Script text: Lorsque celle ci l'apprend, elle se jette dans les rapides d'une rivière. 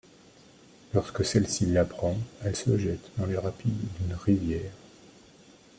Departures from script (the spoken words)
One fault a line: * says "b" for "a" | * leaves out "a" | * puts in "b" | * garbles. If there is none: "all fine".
all fine